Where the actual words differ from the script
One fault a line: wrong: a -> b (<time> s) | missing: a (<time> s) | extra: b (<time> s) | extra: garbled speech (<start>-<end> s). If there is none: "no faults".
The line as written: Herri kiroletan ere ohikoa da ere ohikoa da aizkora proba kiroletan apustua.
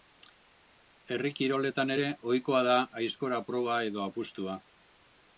missing: ere ohikoa da (2.8 s)
wrong: kiroletan -> edo (3.9 s)